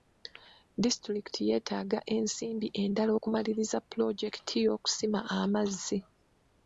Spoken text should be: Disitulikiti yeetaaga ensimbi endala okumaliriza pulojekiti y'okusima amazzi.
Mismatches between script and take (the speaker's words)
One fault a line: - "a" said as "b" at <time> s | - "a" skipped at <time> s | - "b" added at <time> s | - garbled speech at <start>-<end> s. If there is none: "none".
none